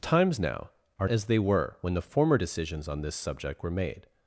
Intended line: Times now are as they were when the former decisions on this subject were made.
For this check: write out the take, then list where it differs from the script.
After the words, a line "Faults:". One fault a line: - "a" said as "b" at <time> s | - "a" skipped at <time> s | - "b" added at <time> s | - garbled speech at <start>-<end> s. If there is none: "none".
Times now are as they were when the former decisions on this subject were made.
Faults:
none